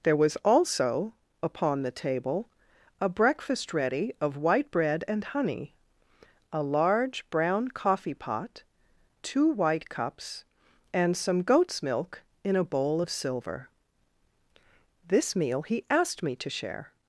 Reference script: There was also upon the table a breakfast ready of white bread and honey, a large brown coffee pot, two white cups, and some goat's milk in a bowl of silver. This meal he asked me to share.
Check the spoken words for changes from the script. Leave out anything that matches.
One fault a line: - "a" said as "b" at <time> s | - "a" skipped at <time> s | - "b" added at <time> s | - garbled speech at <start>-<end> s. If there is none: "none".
none